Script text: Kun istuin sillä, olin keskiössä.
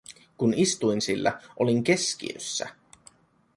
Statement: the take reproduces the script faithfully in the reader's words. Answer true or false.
true